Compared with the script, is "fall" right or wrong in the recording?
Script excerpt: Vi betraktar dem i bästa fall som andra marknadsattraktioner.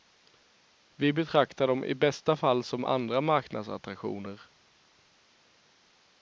right